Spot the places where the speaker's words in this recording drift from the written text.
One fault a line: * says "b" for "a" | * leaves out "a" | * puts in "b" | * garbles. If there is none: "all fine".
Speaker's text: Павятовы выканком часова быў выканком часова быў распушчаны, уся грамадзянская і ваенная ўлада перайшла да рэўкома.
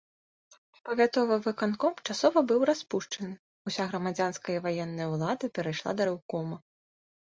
* leaves out "выканком часова быў"